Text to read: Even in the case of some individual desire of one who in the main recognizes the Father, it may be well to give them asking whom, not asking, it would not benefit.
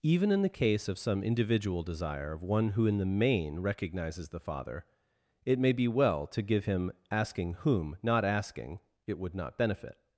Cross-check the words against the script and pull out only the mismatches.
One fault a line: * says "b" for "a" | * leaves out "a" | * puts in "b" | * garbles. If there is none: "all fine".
* says "him" for "them"